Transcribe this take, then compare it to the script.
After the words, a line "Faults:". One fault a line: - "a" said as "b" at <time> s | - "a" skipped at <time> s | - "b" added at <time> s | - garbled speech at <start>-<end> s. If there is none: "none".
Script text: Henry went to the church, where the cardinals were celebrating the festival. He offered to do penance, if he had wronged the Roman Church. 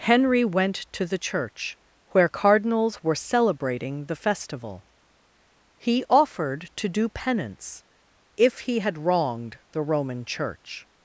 Henry went to the church, where cardinals were celebrating the festival. He offered to do penance, if he had wronged the Roman Church.
Faults:
- "the" skipped at 2.3 s